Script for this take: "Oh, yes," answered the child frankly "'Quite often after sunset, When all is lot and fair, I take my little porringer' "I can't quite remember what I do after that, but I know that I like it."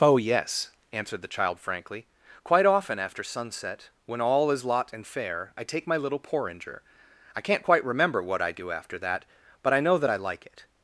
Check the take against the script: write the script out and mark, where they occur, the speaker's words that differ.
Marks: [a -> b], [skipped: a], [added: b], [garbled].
"Oh, yes," answered the child frankly "'Quite often after sunset, When all is lot and fair, I take my little porringer' "I can't quite remember what I do after that, but I know that I like it."